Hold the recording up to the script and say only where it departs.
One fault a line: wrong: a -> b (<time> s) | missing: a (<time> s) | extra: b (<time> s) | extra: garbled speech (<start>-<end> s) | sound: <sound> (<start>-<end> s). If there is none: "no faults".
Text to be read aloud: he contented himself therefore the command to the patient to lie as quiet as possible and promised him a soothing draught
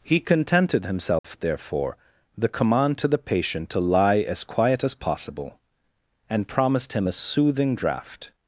sound: dropout (1.2-1.2 s)